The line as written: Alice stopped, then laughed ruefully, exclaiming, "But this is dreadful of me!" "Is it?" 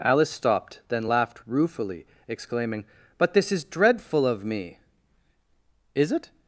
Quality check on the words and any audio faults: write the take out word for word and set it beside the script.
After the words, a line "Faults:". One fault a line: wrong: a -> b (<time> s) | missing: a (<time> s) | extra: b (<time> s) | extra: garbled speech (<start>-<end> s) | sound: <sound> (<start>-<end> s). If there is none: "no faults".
Alice stopped, then laughed ruefully, exclaiming, "But this is dreadful of me!" "Is it?"
Faults:
no faults